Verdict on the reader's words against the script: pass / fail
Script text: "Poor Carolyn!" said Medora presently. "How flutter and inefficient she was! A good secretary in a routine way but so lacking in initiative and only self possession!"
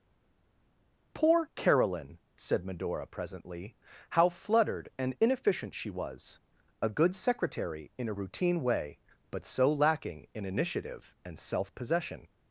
fail